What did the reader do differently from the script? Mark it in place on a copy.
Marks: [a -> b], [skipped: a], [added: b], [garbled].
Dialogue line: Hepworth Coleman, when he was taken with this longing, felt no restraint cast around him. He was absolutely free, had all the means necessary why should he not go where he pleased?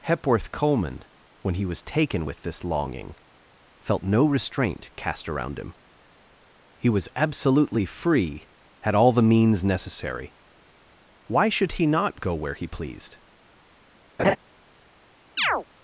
Hepworth Coleman, when he was taken with this longing, felt no restraint cast around him. He was absolutely free, had all the means necessary why should he not go where he pleased?